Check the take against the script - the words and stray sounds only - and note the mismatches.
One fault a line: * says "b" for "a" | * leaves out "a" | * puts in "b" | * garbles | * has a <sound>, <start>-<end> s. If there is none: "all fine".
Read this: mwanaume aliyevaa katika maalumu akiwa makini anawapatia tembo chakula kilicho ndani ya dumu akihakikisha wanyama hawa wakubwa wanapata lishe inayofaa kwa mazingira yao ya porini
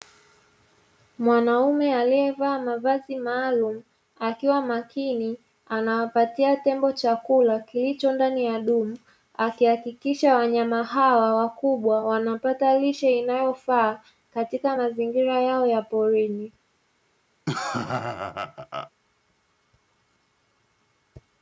* says "mavazi" for "katika"
* says "katika" for "kwa"
* has a laugh, 17.5-18.9 s